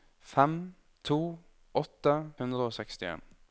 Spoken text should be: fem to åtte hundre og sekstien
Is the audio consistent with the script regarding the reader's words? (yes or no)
yes